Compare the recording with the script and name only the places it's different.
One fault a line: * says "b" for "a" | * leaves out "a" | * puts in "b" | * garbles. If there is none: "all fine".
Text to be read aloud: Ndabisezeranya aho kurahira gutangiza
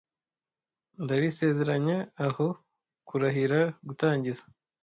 all fine